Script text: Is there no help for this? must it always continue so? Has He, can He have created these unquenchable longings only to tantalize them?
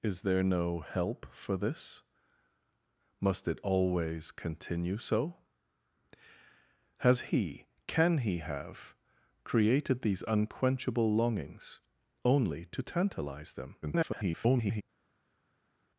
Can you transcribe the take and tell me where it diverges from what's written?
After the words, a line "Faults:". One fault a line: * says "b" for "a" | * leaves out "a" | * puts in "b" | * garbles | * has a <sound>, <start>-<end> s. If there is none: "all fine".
Is there no help for this? must it always continue so? Has He, can He have created these unquenchable longings only to tantalize them? [garbled]
Faults:
* garbles